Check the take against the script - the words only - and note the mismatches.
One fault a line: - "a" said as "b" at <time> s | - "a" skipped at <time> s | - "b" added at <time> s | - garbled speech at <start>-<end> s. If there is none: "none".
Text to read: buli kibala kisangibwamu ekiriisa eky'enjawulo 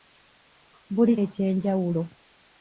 - "kibala kisangibwamu ekiriisa" skipped at 1.1 s